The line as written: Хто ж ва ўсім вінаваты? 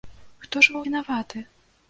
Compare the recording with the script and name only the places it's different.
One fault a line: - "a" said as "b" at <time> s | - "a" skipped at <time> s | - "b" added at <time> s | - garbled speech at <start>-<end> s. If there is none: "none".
- "ўсім" skipped at 0.8 s